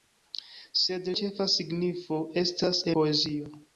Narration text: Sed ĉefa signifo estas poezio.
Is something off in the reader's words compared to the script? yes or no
no